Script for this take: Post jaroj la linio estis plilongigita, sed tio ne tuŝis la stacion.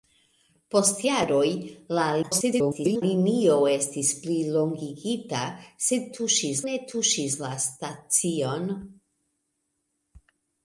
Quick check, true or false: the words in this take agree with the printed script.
false